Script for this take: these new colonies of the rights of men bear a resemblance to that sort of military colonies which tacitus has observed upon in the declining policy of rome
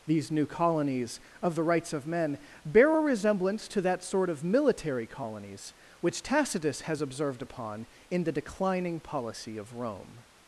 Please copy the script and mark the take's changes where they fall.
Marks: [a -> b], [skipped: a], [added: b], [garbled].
these new colonies of the rights of men bear a resemblance to that sort of military colonies which tacitus has observed upon in the declining policy of rome